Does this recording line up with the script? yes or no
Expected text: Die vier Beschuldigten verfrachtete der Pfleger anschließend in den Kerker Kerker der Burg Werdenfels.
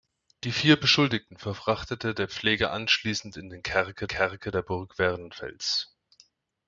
yes